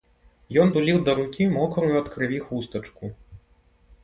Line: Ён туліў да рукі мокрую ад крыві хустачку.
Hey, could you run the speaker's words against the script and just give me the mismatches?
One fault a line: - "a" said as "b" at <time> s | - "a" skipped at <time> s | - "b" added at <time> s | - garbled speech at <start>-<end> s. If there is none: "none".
none